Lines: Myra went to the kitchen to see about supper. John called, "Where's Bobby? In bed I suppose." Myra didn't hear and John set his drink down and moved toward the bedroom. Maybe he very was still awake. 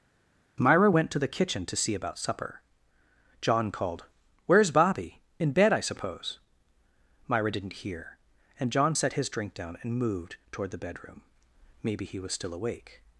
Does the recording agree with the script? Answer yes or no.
no